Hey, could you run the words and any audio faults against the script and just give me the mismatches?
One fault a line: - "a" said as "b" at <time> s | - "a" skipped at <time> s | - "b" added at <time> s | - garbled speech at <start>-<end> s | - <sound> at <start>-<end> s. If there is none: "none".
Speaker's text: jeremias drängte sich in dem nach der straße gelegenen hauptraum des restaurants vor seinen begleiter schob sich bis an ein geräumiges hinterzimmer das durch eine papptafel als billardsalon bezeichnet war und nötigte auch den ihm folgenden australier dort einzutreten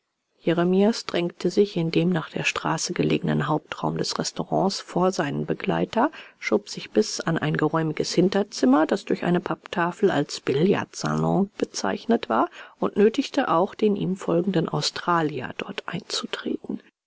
none